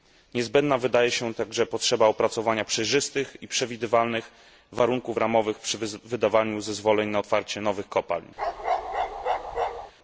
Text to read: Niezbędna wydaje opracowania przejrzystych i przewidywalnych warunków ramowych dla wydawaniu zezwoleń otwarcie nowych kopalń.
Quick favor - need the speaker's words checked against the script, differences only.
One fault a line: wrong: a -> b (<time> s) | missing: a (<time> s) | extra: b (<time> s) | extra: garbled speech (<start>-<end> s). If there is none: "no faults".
extra: się także potrzeba (1.1 s)
wrong: dla -> przy (5.6 s)
extra: na (7.1 s)